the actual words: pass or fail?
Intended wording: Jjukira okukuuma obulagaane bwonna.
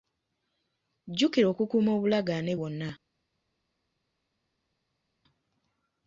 pass